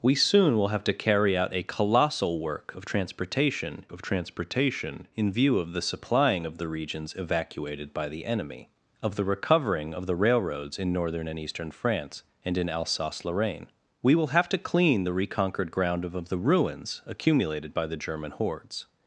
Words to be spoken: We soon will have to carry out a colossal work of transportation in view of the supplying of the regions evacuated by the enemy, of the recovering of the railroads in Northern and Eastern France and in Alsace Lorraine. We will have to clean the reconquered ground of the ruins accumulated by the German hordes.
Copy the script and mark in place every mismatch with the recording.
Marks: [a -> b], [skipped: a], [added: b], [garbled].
We soon will have to carry out a colossal work of transportation [added: of transportation] in view of the supplying of the regions evacuated by the enemy, of the recovering of the railroads in Northern and Eastern France and in Alsace Lorraine. We will have to clean the reconquered ground of the ruins accumulated by the German hordes.